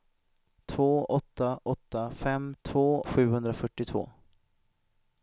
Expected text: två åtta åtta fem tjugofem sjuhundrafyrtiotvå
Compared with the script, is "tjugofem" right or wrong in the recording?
wrong